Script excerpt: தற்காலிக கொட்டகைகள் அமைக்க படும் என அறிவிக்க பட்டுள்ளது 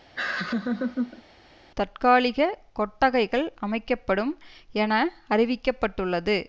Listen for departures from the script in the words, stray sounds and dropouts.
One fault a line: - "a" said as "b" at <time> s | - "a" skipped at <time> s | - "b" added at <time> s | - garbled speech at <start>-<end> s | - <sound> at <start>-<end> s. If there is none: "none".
- laugh at 0.2-1.2 s